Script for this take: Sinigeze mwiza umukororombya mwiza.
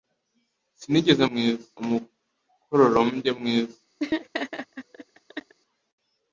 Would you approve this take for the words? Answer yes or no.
yes